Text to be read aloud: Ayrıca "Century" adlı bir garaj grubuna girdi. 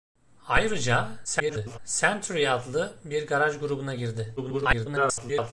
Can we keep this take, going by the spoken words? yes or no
no